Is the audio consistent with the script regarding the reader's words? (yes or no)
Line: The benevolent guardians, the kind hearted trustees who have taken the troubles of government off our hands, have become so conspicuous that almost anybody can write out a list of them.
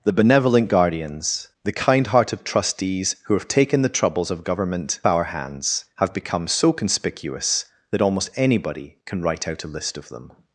no